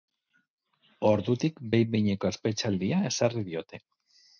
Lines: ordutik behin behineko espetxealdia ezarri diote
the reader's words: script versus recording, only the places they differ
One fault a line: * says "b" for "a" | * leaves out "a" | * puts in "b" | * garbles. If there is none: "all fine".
all fine